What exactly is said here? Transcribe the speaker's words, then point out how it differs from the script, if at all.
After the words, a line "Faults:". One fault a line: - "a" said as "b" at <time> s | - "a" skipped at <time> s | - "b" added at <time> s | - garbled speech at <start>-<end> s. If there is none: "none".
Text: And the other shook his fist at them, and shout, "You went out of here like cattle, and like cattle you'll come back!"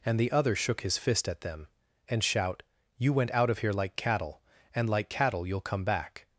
And the other shook his fist at them, and shout, "You went out of here like cattle, and like cattle you'll come back!"
Faults:
none